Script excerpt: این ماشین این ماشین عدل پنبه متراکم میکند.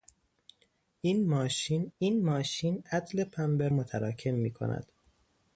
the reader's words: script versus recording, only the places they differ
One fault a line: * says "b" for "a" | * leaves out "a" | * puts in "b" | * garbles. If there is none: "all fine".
all fine